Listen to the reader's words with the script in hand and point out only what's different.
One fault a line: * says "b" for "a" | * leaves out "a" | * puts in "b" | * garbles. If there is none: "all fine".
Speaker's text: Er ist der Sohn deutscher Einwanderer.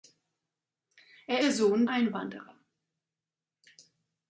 * leaves out "ist"
* leaves out "deutscher"